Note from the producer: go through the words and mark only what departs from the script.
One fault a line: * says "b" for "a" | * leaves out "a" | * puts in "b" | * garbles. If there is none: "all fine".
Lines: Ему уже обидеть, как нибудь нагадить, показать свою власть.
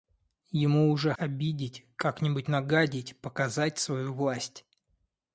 all fine